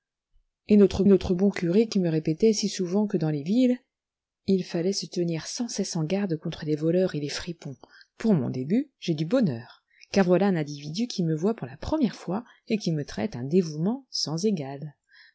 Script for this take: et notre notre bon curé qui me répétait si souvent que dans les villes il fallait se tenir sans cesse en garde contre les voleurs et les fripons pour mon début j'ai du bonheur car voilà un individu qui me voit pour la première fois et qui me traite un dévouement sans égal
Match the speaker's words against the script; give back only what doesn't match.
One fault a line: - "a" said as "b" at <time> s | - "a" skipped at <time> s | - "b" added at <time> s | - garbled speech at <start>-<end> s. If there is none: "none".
none